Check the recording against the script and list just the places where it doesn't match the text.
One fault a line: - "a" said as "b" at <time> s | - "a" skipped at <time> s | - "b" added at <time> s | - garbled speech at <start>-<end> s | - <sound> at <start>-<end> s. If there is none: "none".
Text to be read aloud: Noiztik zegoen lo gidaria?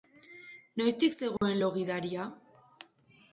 - dropout at 1.4-1.4 s